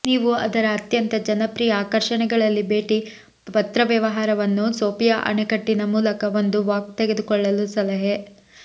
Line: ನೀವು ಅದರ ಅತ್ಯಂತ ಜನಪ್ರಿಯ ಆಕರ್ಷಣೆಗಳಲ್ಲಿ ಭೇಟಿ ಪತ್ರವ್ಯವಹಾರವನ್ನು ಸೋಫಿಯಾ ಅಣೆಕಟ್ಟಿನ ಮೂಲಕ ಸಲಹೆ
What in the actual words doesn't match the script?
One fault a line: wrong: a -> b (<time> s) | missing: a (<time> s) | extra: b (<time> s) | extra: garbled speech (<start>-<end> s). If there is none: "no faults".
extra: ಒಂದು ವಾಕ್ ತೆಗೆದುಕೊಳ್ಳಲು (6.4 s)